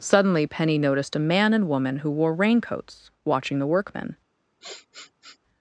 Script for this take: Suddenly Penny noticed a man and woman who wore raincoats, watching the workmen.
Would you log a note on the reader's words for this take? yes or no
no